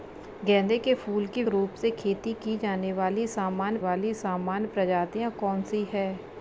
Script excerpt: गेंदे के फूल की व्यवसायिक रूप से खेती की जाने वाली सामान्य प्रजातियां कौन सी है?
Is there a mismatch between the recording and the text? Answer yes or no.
yes